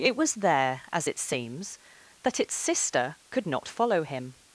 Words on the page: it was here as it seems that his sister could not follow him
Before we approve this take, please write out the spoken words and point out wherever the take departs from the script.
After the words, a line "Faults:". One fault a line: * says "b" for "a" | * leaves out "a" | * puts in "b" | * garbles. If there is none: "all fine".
it was there as it seems that its sister could not follow him
Faults:
* says "there" for "here"
* says "its" for "his"